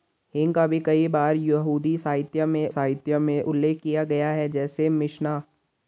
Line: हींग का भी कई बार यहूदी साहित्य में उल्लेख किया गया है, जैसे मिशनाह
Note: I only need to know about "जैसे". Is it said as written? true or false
true